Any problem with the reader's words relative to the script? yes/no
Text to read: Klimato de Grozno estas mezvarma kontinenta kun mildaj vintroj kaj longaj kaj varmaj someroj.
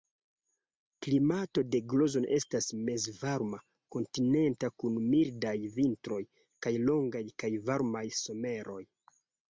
no